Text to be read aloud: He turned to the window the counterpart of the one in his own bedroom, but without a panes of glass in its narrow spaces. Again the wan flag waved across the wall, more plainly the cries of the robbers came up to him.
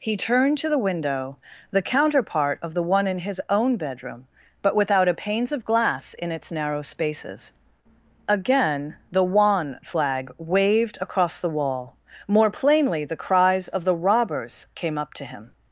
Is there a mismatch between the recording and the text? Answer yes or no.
no